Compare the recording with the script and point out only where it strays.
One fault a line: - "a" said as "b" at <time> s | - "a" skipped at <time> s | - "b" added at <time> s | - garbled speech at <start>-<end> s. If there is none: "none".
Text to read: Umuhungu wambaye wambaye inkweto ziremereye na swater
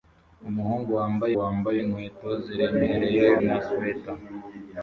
none